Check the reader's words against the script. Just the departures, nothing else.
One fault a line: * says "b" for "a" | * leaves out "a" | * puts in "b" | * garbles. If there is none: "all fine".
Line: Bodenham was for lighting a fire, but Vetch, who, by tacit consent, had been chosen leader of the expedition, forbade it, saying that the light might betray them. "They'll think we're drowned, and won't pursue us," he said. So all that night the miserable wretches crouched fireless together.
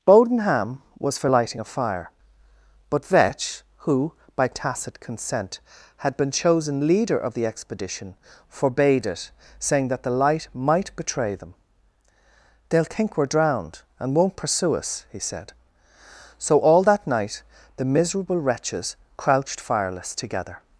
all fine